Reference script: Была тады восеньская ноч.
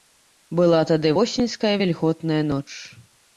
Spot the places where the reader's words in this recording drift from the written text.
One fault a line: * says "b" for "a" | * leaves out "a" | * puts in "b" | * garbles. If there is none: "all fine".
* puts in "вільготная"